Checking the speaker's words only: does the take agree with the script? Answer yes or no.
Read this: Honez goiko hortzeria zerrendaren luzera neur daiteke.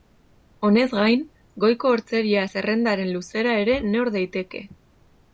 no